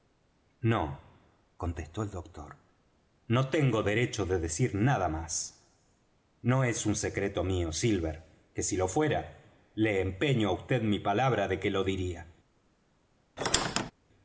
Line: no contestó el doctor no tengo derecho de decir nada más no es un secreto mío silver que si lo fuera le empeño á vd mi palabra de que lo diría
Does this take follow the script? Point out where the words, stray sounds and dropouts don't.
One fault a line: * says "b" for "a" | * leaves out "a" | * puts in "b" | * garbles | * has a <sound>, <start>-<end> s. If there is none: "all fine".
* has a squeak, 13.4-13.9 s